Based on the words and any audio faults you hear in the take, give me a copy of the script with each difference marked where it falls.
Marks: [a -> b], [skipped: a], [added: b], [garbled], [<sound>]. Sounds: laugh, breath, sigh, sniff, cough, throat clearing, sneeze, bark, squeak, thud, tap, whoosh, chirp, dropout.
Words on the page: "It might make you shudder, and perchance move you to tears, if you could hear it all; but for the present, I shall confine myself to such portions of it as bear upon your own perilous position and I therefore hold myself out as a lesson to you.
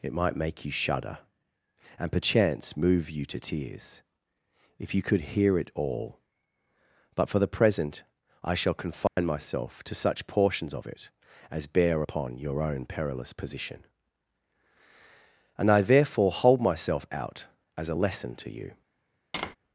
"It might make you shudder, and perchance move you to tears, if you could hear it all; but for the present, I shall confine [dropout] myself to such portions of it as bear upon your own perilous position and I therefore hold myself out as a lesson to you. [tap]